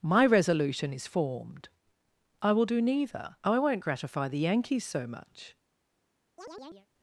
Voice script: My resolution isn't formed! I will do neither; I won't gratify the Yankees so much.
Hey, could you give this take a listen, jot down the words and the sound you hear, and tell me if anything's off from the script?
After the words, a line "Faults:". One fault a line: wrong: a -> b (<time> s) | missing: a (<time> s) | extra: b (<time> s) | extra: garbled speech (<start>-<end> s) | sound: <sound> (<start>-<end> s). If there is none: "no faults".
My resolution is formed! I will do neither; I won't gratify the Yankees so much.
Faults:
wrong: isn't -> is (0.9 s)
sound: chirp (6.4-6.9 s)